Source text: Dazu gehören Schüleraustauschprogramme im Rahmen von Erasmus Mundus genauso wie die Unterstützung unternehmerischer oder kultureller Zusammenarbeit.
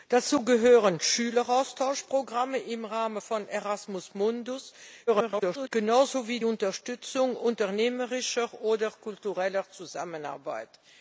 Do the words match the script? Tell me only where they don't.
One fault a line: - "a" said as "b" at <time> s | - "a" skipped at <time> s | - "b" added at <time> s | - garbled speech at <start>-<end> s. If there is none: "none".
- garbled speech at 5.1-5.7 s
- "die" skipped at 6.4 s